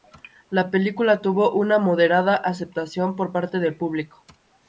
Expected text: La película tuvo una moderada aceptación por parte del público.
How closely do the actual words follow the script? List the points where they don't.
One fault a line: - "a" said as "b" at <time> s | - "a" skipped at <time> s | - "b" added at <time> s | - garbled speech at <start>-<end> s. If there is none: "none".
none